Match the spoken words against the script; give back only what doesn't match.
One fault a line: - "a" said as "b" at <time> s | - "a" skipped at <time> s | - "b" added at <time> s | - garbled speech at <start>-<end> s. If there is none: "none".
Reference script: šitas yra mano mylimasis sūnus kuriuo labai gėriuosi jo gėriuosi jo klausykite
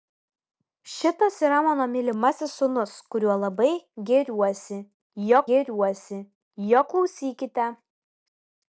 none